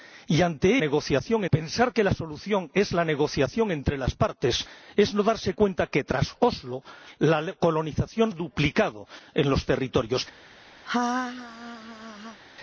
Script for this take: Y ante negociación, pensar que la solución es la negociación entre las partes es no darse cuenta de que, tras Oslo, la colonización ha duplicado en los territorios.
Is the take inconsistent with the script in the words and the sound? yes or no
yes